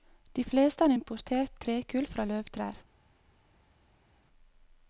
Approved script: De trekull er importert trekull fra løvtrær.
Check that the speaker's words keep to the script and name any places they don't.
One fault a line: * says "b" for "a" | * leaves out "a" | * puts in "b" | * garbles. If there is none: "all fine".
* says "fleste" for "trekull"